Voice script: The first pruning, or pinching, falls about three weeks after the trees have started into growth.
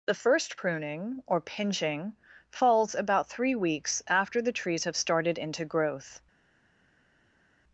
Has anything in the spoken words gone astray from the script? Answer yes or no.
no